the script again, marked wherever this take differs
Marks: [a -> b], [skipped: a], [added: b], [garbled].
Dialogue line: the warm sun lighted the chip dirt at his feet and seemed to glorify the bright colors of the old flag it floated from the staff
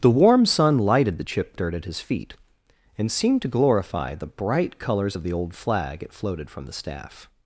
the warm sun lighted the chip dirt at his feet and seemed to glorify the bright colors of the old flag it floated from the staff